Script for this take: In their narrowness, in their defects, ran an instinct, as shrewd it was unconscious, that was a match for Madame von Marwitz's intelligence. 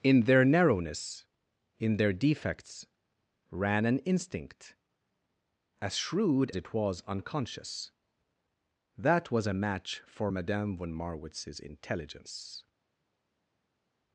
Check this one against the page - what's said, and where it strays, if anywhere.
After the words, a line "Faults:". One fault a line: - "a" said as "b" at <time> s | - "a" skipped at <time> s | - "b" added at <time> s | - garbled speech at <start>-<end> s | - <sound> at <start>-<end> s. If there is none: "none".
In their narrowness, in their defects, ran an instinct, as shrewd it was unconscious, that was a match for Madame von Marwitz's intelligence.
Faults:
none